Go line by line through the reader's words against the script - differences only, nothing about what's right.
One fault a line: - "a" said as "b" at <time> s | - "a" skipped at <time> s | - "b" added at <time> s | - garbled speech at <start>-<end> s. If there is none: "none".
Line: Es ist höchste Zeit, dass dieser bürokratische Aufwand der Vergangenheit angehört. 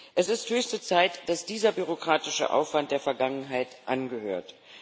none